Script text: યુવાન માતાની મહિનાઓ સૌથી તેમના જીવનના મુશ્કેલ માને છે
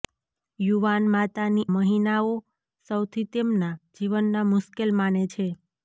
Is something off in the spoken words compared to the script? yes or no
no